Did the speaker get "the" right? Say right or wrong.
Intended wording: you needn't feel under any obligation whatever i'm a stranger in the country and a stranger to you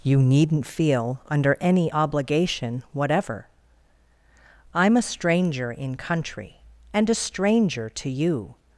wrong